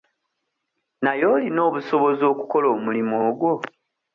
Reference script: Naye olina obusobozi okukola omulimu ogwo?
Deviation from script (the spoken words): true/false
false